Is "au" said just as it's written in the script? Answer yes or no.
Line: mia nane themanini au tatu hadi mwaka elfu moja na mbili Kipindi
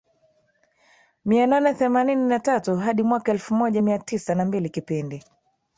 no